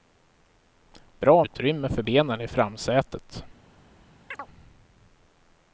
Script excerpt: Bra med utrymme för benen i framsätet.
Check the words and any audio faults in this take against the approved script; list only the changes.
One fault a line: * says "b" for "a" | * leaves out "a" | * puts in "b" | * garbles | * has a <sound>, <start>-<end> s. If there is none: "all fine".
* leaves out "med"
* has a chirp, 4.3-4.5 s